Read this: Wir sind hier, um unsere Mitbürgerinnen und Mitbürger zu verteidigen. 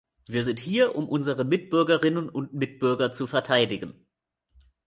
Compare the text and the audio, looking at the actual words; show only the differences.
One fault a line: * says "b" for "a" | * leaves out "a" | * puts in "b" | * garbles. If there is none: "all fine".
all fine